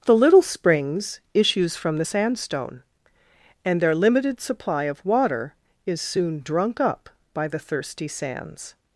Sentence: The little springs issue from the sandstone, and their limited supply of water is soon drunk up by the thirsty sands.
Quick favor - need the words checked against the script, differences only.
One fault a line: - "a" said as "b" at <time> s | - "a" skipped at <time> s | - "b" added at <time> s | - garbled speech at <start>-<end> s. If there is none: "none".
- "issue" said as "issues" at 1.3 s